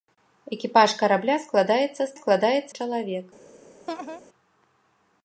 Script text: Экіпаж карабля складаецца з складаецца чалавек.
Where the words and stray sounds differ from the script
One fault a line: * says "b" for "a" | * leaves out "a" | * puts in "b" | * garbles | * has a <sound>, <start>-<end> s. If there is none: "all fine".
* has a laugh, 3.9-4.2 s